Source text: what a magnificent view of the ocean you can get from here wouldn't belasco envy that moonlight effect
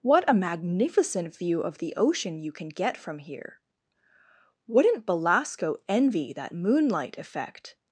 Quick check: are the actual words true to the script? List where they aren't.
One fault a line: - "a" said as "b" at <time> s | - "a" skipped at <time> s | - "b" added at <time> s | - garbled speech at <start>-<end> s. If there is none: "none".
none